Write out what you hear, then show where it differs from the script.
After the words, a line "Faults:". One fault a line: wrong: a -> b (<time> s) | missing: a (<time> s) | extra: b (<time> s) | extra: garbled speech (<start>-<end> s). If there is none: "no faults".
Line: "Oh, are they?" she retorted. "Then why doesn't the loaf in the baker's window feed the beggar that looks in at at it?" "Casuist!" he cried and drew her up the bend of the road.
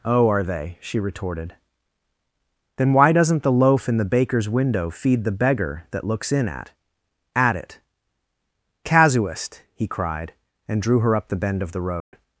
"Oh, are they?" she retorted. "Then why doesn't the loaf in the baker's window feed the beggar that looks in at at it?" "Casuist!" he cried and drew her up the bend of the road.
Faults:
no faults